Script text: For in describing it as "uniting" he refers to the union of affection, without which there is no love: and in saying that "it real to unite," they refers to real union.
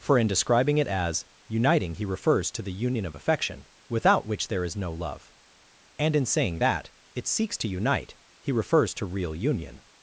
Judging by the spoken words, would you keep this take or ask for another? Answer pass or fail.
fail